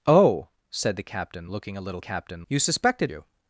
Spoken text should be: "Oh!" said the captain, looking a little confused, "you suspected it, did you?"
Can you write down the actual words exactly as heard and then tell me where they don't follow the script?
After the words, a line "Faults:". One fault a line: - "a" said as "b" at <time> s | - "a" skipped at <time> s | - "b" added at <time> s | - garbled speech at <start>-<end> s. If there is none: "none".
"Oh!" said the captain, looking a little captain, "you suspected you?"
Faults:
- "confused" said as "captain" at 2.0 s
- "it did" skipped at 3.1 s